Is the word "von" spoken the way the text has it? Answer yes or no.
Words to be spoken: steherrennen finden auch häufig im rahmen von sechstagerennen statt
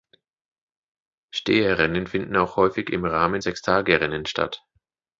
no